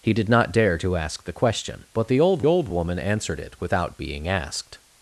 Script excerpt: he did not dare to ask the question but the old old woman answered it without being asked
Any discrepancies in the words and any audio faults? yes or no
no